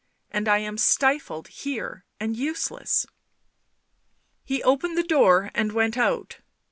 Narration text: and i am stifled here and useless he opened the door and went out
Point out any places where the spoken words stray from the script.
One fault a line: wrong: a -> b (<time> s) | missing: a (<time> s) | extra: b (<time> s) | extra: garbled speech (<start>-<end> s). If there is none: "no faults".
no faults